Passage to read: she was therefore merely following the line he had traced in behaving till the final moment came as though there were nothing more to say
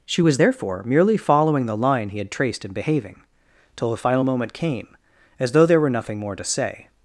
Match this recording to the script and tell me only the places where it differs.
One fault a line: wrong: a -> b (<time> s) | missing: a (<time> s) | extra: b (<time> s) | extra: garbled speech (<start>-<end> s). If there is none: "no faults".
no faults